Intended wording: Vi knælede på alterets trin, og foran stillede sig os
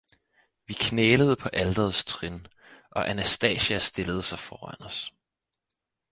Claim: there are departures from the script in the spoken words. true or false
true